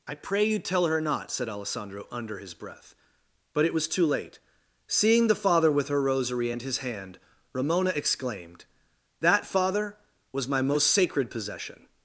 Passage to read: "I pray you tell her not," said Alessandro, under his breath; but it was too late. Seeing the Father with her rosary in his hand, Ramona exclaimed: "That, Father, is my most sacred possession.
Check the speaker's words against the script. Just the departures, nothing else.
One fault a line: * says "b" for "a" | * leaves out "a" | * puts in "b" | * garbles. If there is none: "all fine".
* says "and" for "in"
* says "was" for "is"